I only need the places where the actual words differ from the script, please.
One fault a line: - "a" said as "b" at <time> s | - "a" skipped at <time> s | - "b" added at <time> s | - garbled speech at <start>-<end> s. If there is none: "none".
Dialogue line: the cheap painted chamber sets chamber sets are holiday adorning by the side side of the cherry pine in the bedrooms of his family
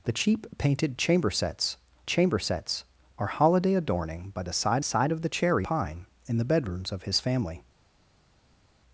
none